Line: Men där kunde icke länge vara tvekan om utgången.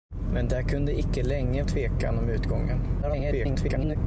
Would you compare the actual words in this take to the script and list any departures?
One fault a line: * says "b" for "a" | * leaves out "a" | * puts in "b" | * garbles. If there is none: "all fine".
* leaves out "vara"
* garbles